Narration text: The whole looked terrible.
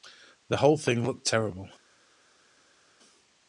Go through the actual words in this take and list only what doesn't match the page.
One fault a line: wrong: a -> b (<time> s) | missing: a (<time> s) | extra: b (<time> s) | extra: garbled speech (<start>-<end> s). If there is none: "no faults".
extra: thing (0.8 s)